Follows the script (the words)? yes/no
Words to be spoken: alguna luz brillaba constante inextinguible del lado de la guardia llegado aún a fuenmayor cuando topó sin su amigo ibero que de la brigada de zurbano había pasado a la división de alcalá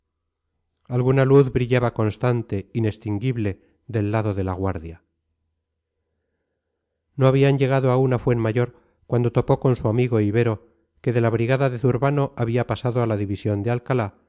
no